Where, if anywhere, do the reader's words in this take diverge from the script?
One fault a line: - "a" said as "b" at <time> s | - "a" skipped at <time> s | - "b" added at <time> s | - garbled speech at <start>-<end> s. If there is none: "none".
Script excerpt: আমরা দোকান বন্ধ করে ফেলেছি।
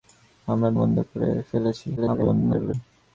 - "দোকান" skipped at 0.7 s
- garbled speech at 2.0-2.7 s